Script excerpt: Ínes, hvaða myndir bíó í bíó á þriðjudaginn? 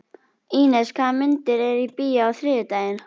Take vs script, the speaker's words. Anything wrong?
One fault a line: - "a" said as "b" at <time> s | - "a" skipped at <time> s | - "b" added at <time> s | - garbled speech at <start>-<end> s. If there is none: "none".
- "bíó" said as "eru" at 1.7 s